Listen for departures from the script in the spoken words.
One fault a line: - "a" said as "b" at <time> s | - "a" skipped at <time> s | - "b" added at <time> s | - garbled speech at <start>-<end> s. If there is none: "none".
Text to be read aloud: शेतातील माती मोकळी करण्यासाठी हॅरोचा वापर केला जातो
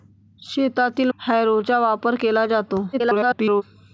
- "माती मोकळी करण्यासाठी" skipped at 1.1 s
- garbled speech at 2.9-3.6 s